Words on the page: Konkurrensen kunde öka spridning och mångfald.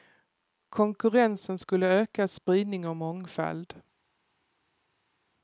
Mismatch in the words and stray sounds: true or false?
true